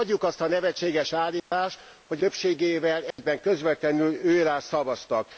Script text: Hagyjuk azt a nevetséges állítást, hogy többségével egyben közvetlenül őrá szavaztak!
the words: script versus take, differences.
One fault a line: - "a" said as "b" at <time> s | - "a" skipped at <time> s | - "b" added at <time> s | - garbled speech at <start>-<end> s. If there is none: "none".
none